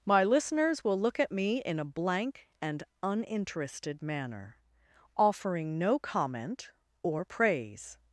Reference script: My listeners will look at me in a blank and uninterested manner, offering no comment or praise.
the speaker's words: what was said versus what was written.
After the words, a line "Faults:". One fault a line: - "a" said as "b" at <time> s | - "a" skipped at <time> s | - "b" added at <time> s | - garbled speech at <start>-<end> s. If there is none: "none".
My listeners will look at me in a blank and uninterested manner, offering no comment or praise.
Faults:
none